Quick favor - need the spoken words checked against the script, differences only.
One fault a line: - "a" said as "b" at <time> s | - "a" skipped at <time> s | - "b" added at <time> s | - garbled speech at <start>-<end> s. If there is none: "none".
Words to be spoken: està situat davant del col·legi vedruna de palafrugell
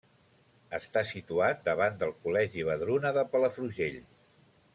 none